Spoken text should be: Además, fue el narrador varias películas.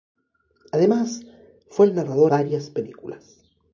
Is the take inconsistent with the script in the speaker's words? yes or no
no